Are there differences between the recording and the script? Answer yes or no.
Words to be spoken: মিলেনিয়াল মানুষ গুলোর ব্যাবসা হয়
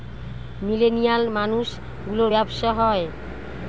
no